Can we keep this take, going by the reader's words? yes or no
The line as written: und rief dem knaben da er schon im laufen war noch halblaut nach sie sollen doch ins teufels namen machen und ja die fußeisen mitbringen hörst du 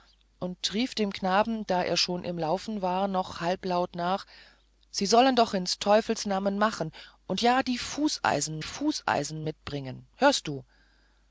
no